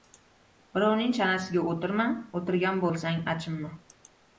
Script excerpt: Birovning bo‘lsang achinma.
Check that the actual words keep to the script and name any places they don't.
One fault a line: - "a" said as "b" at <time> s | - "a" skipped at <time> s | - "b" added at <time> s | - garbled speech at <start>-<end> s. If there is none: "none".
- "chanasiga o‘tirma o‘tirgan" added at 1.2 s